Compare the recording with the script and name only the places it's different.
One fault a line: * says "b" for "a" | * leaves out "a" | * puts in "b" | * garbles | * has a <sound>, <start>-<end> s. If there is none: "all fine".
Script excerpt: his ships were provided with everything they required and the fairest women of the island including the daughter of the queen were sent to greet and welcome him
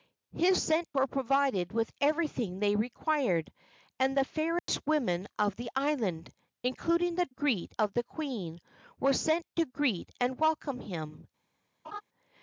* says "sent" for "ships"
* has a dropout, 4.6-4.7 s
* says "greet" for "daughter"
* has a laugh, 11.8-12.0 s